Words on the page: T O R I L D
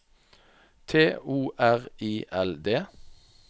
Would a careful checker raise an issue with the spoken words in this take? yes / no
no